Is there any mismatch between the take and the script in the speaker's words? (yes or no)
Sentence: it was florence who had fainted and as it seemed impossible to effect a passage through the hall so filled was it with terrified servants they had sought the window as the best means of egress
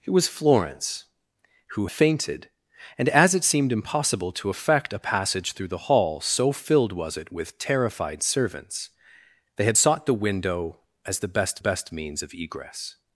yes